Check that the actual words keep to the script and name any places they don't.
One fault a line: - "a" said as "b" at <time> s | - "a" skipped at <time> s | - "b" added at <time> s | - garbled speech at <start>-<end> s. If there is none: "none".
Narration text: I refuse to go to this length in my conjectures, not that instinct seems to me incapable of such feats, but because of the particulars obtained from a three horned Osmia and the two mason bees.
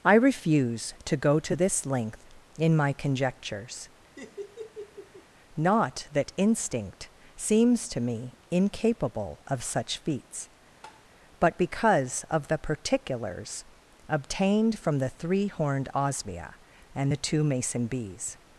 - "a" said as "the" at 15.0 s